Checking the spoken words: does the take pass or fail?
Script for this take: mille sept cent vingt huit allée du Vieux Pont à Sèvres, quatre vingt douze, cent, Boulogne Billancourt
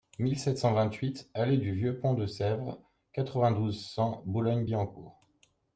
fail